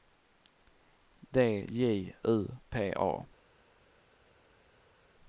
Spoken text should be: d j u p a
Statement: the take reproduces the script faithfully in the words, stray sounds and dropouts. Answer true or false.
true